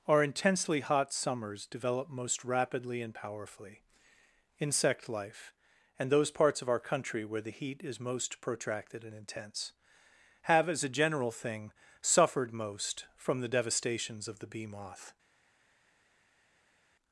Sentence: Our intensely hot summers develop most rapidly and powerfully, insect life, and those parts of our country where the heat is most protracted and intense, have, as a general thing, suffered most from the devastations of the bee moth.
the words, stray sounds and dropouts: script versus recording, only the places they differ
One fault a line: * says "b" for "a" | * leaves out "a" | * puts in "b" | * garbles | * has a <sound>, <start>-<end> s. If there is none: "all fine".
all fine